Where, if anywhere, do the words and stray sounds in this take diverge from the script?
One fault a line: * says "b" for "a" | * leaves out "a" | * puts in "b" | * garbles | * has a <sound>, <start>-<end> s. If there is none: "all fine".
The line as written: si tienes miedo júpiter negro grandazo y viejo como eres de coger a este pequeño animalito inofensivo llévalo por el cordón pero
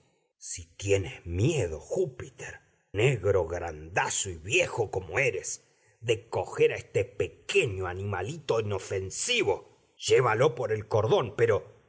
all fine